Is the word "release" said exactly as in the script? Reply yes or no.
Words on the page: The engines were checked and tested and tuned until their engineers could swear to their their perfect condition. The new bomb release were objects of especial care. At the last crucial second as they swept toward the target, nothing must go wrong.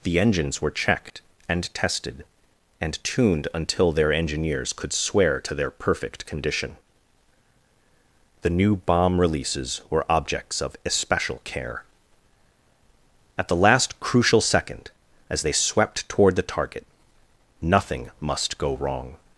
no